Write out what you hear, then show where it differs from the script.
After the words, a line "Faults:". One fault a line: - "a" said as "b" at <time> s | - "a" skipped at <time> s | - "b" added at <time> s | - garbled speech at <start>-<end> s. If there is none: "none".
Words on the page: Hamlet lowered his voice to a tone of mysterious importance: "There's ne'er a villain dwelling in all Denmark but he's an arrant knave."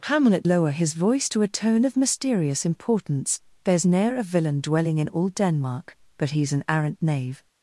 Hamlet lower his voice to a tone of mysterious importance: "There's ne'er a villain dwelling in all Denmark but he's an arrant knave."
Faults:
- "lowered" said as "lower" at 0.4 s